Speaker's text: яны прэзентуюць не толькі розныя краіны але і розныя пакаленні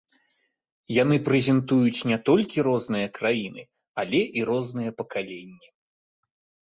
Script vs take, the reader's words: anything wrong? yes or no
no